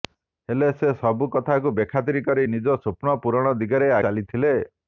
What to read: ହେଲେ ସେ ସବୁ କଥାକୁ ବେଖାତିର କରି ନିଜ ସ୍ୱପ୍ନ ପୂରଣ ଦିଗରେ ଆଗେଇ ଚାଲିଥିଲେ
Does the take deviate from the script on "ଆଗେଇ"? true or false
true